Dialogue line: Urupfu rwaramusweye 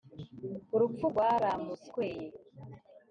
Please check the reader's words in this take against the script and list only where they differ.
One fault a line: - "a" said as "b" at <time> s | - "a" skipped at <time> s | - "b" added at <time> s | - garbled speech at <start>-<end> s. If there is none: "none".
none